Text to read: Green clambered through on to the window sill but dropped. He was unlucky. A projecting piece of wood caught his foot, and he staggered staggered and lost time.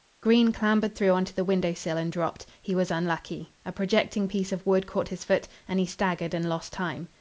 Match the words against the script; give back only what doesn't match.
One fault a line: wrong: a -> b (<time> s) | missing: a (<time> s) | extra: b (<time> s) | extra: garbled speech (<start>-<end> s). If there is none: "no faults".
wrong: but -> and (1.9 s)
missing: staggered (6.3 s)